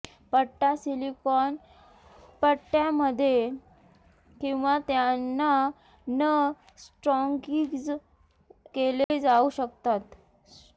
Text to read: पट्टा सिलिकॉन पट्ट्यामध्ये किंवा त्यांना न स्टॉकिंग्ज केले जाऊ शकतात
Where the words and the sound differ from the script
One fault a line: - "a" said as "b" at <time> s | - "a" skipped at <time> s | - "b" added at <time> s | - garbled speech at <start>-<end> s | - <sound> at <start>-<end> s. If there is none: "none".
- dropout at 9.0-9.1 s